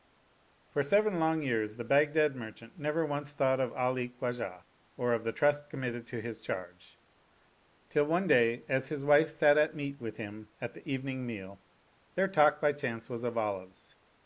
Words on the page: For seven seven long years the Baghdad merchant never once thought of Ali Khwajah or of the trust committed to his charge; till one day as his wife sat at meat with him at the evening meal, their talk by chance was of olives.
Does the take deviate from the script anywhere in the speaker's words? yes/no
yes